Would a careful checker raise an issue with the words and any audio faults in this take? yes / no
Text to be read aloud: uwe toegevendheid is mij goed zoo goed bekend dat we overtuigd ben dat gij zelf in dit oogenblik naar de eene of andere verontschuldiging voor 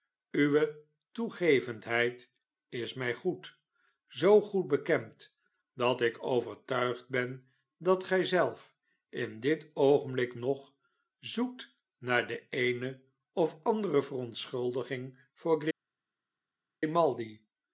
yes